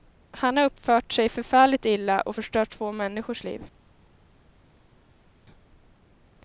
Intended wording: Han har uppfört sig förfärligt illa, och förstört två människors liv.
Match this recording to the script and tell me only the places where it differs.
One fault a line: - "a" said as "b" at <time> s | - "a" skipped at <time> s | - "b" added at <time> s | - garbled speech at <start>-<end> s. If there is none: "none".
none